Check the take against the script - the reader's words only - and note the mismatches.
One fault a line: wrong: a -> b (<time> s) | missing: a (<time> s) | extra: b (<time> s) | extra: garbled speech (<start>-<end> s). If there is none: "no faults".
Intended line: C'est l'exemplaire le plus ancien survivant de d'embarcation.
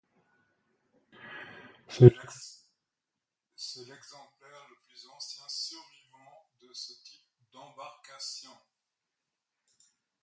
extra: ce type (6.7 s)